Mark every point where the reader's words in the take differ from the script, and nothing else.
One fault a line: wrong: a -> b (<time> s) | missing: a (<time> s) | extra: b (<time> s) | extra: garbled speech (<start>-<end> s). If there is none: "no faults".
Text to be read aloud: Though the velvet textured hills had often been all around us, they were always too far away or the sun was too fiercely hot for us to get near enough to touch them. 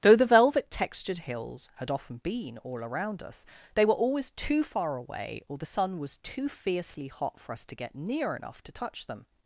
no faults